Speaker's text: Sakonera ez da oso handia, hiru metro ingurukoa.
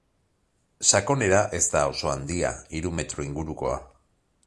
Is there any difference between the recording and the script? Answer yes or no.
no